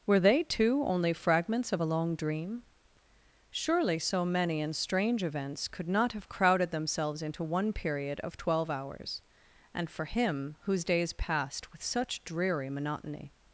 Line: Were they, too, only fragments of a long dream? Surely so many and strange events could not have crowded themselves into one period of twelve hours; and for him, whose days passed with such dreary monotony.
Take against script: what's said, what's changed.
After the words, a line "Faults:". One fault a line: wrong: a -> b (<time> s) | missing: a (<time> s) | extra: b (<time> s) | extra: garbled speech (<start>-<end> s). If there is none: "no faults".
Were they, too, only fragments of a long dream? Surely so many and strange events could not have crowded themselves into one period of twelve hours; and for him, whose days passed with such dreary monotony.
Faults:
no faults